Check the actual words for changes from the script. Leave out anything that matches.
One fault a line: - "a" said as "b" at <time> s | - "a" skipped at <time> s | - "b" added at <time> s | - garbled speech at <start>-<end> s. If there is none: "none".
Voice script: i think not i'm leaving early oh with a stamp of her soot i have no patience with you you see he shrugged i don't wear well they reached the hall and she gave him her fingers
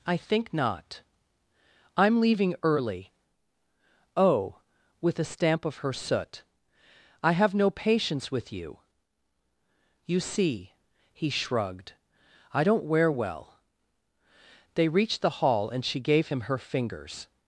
none